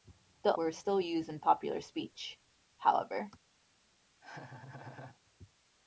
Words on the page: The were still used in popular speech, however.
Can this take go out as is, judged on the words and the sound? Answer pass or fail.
fail